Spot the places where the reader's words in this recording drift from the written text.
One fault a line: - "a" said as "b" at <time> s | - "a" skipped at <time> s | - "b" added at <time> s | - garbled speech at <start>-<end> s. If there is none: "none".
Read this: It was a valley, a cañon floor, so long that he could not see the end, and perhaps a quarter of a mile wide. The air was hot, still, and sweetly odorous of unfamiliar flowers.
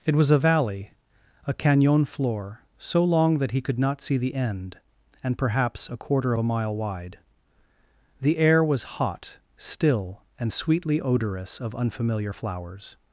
none